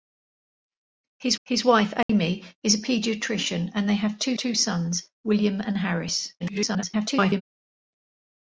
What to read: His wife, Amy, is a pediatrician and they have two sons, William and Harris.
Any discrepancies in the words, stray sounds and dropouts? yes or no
yes